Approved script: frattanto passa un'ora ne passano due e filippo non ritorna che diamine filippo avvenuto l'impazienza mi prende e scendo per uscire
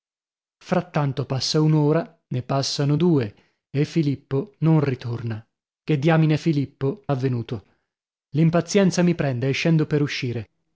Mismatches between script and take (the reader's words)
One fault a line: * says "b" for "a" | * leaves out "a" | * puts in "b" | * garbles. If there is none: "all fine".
all fine